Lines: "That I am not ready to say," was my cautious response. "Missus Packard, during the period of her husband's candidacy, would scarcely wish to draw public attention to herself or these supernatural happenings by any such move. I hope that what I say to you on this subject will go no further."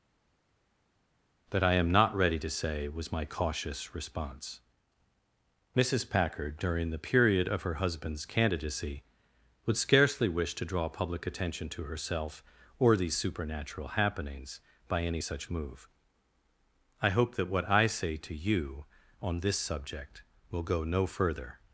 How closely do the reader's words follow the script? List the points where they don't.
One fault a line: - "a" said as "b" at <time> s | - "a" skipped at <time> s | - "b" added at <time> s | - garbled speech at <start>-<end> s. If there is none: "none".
none